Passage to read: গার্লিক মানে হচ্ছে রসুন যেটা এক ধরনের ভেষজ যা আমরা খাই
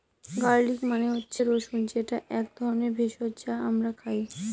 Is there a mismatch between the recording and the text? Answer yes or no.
no